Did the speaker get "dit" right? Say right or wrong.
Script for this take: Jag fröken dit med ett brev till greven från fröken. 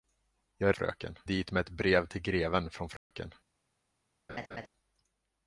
right